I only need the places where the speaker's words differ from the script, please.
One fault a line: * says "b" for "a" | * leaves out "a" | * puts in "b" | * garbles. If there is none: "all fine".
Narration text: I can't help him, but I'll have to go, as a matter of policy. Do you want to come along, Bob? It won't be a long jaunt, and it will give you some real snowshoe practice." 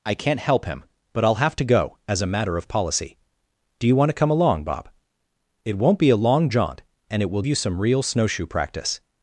* leaves out "give"